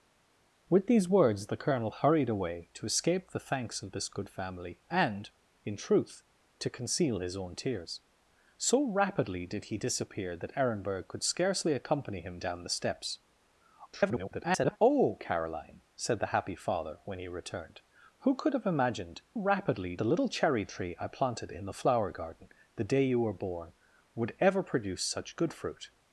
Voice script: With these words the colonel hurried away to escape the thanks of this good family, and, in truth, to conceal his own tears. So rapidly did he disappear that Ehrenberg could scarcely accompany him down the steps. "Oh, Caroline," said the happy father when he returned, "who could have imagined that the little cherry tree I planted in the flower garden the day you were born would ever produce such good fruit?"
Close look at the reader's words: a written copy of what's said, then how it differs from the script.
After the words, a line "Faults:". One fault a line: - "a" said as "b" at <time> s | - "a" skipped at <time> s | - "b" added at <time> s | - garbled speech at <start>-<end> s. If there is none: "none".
With these words the colonel hurried away to escape the thanks of this good family, and, in truth, to conceal his own tears. So rapidly did he disappear that Ehrenberg could scarcely accompany him down the steps. [garbled] "Oh, Caroline," said the happy father when he returned, "who could have imagined rapidly the little cherry tree I planted in the flower garden the day you were born would ever produce such good fruit?"
Faults:
- garbled speech at 13.9-14.8 s
- "that" said as "rapidly" at 19.3 s